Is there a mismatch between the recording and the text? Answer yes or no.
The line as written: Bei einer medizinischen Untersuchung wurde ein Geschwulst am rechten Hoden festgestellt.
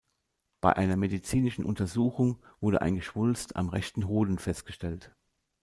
no